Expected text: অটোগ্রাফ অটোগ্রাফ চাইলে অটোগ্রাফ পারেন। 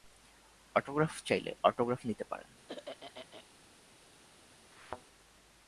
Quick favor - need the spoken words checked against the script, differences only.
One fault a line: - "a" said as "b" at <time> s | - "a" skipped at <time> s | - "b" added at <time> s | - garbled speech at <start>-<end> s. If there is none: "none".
- "অটোগ্রাফ" skipped at 1.1 s
- "নিতে" added at 2.0 s